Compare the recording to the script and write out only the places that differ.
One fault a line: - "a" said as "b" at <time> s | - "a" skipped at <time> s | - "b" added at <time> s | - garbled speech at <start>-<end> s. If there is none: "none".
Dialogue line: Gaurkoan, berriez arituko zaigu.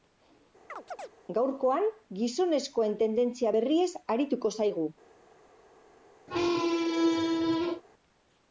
- "gizonezkoen tendentzia" added at 2.2 s